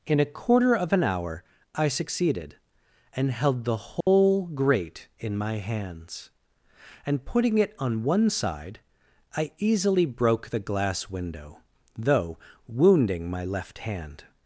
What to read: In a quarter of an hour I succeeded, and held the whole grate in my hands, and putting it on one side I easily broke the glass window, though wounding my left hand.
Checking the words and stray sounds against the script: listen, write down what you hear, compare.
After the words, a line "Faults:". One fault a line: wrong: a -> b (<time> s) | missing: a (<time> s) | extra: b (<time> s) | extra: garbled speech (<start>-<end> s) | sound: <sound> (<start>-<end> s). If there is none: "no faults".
In a quarter of an hour I succeeded, and held the whole grate in my hands, and putting it on one side I easily broke the glass window, though wounding my left hand.
Faults:
sound: dropout (4.0-4.1 s)